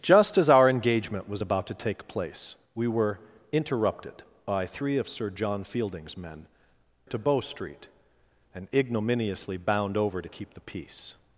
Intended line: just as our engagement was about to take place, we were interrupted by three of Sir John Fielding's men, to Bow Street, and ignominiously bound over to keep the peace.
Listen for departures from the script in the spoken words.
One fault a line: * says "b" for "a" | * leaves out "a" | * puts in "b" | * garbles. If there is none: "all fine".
all fine